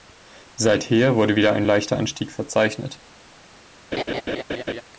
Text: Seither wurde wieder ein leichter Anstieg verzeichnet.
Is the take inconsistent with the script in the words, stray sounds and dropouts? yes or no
yes